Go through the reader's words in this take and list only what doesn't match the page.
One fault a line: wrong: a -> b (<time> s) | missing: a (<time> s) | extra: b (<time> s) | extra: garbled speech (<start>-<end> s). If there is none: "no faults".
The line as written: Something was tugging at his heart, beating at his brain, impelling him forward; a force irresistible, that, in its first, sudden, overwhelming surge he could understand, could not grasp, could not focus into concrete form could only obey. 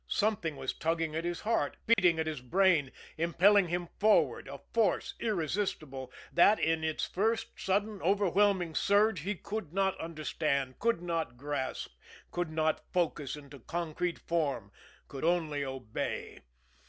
extra: not (9.7 s)